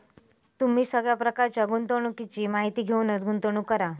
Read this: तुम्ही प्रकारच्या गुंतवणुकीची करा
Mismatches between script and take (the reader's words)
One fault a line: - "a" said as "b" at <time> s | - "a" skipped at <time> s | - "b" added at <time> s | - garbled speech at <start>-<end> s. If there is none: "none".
- "सगळ्या" added at 0.8 s
- "माहिती घेऊनच गुंतवणूक" added at 2.5 s